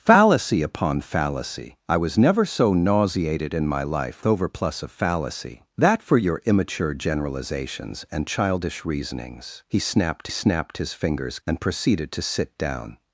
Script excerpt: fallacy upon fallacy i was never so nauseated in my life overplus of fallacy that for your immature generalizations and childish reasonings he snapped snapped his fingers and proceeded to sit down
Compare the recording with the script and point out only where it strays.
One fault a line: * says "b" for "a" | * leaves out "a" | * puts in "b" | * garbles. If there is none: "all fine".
all fine